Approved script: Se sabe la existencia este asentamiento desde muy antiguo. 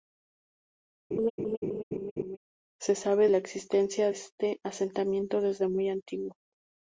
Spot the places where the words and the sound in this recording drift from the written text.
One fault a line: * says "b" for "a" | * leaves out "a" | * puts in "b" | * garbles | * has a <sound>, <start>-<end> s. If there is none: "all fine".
* has a laugh, 1.1-2.4 s